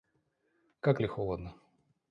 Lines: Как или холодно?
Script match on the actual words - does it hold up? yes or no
yes